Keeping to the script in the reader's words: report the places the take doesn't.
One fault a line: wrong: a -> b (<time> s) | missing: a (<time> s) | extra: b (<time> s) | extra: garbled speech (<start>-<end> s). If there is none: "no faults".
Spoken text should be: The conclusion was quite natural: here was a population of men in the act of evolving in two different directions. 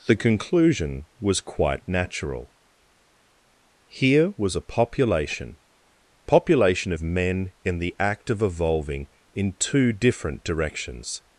extra: population (6.3 s)